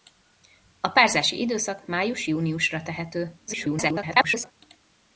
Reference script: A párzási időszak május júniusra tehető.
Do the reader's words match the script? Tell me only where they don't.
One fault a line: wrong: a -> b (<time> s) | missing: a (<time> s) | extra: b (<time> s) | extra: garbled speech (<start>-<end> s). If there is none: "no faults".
extra: garbled speech (3.5-4.5 s)